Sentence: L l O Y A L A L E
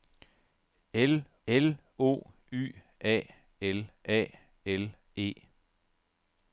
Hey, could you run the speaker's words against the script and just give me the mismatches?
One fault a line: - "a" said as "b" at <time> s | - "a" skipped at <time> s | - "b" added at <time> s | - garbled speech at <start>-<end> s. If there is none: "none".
none